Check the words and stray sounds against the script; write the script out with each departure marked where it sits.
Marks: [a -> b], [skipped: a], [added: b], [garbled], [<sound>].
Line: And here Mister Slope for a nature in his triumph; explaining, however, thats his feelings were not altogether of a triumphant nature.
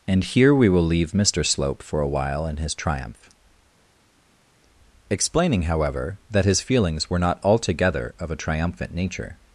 And here [added: we will leave] Mister Slope for a [nature -> while] in his triumph; explaining, however, [thats -> that] his feelings were not altogether of a triumphant nature.